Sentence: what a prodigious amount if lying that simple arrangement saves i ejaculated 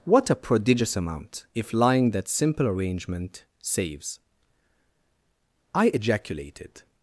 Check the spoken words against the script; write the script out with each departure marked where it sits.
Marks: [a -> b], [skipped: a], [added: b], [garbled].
what a prodigious amount if lying that simple arrangement saves i ejaculated